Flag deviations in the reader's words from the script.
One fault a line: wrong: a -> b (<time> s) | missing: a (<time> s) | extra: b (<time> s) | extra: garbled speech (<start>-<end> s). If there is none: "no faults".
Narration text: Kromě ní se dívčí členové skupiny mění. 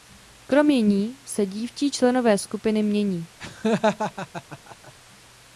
no faults